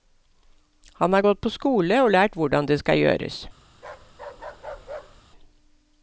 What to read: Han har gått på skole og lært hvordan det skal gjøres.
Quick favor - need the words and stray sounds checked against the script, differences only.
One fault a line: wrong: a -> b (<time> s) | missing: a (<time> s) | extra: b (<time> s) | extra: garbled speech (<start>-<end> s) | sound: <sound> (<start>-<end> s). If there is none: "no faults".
sound: bark (3.7-5.2 s)